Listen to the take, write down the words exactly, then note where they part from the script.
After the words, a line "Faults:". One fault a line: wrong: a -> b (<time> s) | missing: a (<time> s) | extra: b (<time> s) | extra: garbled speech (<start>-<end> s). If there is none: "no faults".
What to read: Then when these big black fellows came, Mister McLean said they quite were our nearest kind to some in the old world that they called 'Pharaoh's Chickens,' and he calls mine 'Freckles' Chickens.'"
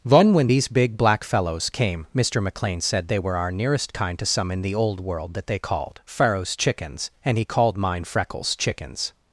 Then when these big black fellows came, Mister McLean said they were our nearest kind to some in the old world that they called 'Pharaoh's Chickens,' and he called mine 'Freckles' Chickens.'"
Faults:
missing: quite (3.2 s)
wrong: calls -> called (7.4 s)